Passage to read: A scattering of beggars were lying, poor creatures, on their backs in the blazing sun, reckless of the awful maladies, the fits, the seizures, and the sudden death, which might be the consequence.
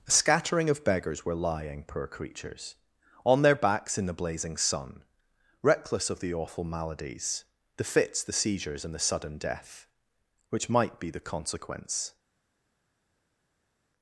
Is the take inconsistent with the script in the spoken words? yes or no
no